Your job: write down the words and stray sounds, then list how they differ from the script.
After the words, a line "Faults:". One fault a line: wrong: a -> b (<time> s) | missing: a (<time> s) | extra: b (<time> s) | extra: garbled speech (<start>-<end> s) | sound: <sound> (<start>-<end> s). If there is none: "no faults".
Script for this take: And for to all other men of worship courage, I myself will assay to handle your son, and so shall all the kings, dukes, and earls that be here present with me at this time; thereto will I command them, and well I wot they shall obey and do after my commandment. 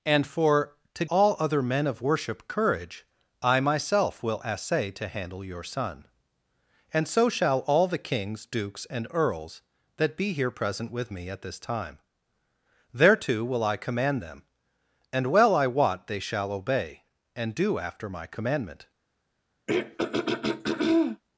And for to all other men of worship courage, I myself will assay to handle your son, and so shall all the kings, dukes, and earls that be here present with me at this time; thereto will I command them, and well I wot they shall obey and do after my commandment.
Faults:
sound: throat clearing (19.7-21.2 s)